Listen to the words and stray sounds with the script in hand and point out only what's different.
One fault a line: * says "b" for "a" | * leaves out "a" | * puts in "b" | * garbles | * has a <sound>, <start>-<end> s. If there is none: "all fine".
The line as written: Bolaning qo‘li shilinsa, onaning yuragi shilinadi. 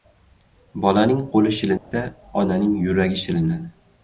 * has a dropout, 1.8-1.9 s